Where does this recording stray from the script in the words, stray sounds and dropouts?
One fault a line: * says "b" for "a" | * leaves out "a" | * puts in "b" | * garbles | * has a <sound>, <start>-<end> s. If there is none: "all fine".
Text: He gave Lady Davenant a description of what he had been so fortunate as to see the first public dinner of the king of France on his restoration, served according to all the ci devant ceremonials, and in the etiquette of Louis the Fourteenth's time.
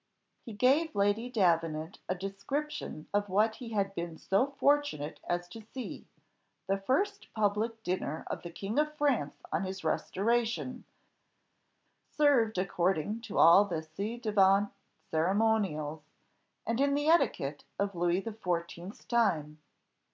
all fine